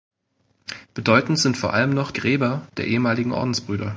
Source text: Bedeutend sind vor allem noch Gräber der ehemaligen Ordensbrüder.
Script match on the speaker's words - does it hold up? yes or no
yes